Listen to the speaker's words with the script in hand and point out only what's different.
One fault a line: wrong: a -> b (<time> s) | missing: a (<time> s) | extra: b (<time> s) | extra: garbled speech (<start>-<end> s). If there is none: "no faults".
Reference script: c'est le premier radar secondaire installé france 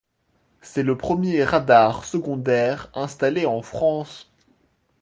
extra: en (3.4 s)